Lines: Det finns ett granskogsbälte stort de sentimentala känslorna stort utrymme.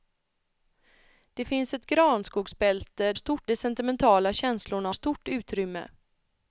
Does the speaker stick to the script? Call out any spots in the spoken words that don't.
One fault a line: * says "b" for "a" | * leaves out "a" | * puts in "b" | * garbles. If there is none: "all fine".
all fine